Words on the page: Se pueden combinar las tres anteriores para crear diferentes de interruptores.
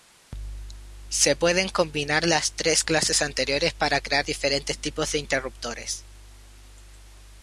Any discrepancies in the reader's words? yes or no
yes